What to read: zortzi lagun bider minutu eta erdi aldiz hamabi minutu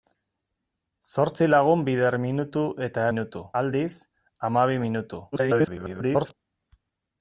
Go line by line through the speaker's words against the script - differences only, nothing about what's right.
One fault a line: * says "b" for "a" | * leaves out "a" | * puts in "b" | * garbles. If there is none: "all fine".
* says "minutu" for "erdi"
* garbles